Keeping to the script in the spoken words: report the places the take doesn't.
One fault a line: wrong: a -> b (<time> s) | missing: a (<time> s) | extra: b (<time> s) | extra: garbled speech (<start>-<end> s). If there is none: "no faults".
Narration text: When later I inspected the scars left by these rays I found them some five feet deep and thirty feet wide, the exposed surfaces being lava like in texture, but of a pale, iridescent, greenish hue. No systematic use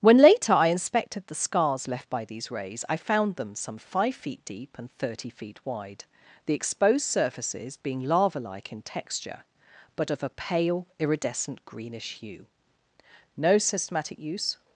no faults